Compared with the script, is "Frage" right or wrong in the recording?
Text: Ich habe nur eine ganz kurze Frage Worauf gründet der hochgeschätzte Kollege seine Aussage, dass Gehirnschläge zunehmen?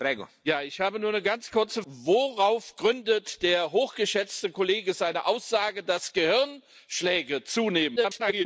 wrong